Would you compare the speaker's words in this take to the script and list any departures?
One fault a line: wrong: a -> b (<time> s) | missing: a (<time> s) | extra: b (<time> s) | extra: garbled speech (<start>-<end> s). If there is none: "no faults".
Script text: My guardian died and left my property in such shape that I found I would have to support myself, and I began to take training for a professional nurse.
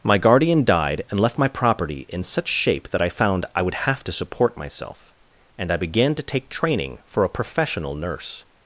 no faults